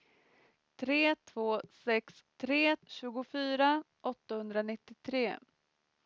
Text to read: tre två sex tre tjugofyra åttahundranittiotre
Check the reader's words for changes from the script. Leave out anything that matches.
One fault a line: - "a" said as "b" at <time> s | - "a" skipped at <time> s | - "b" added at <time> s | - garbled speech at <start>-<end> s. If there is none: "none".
none